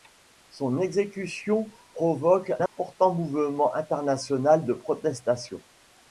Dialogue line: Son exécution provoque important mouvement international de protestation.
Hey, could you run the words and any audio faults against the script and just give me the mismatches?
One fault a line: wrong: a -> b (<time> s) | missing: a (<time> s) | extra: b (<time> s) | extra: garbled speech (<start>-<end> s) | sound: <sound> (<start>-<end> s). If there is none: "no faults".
sound: dropout (2.7-2.8 s)